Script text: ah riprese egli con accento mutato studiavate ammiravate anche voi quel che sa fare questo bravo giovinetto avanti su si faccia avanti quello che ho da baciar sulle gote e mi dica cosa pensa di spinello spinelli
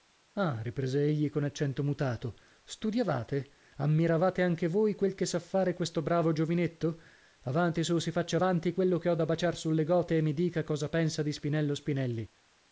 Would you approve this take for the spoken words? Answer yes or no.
yes